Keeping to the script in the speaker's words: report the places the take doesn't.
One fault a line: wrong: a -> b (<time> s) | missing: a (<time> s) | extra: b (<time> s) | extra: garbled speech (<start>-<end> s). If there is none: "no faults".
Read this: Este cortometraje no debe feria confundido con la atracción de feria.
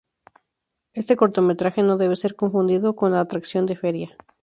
wrong: feria -> ser (2.1 s)